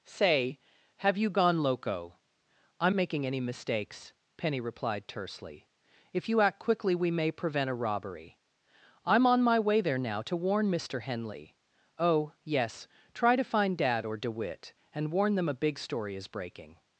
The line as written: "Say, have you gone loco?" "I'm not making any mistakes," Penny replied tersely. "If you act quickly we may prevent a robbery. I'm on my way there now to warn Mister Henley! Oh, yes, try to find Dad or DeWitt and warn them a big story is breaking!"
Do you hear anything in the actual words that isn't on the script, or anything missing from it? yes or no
yes